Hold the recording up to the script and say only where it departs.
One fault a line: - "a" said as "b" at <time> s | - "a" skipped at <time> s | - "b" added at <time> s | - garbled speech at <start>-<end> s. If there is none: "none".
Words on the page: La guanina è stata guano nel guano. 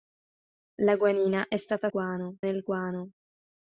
none